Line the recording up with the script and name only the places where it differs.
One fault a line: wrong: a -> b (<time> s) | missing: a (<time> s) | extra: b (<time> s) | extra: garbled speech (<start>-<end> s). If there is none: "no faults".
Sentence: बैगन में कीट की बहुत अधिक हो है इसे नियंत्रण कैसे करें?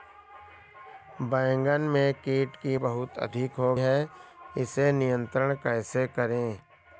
no faults